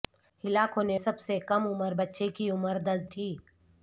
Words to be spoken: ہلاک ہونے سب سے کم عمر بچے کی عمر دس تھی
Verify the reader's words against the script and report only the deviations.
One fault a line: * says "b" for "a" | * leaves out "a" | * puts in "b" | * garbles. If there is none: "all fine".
all fine